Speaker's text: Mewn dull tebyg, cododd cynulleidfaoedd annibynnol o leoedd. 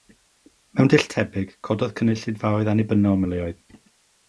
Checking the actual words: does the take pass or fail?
pass